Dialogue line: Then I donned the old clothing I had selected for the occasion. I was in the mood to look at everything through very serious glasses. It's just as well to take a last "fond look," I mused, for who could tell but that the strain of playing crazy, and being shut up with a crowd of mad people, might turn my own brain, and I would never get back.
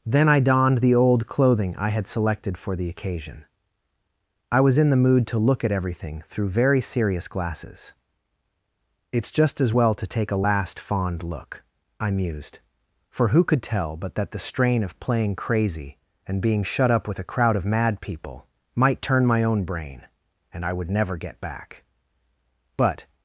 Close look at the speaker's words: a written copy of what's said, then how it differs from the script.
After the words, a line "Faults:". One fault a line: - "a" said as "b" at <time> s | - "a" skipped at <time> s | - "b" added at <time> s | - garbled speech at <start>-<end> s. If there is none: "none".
Then I donned the old clothing I had selected for the occasion. I was in the mood to look at everything through very serious glasses. It's just as well to take a last "fond look," I mused, for who could tell but that the strain of playing crazy, and being shut up with a crowd of mad people, might turn my own brain, and I would never get back. But
Faults:
- "But" added at 22.8 s